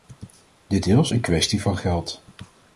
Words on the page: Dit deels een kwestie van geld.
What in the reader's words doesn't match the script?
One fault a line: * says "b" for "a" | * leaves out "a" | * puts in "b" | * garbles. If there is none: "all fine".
all fine